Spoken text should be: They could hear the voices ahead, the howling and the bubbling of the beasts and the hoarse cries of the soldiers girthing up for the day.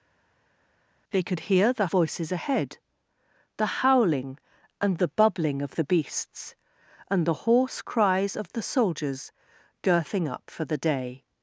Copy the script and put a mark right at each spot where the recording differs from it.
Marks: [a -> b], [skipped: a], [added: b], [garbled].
They could hear the voices ahead, the howling and the bubbling of the beasts and the hoarse cries of the soldiers girthing up for the day.